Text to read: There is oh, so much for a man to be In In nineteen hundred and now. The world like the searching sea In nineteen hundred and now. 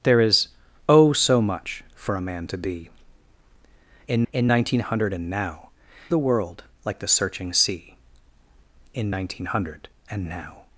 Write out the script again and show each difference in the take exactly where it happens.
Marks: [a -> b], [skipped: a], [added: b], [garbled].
There is oh, so much for a man to be In In nineteen hundred and now. The world like the searching sea In nineteen hundred and now.